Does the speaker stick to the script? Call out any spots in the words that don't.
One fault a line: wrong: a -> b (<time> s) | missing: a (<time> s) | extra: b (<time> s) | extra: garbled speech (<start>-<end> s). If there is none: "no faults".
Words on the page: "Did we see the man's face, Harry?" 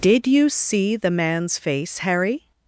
wrong: we -> you (0.2 s)